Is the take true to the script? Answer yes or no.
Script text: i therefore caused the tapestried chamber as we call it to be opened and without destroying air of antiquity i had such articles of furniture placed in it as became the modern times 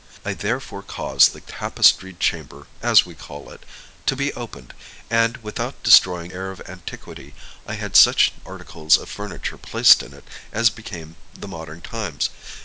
yes